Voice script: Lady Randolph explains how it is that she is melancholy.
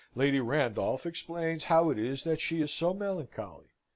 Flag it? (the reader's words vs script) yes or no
yes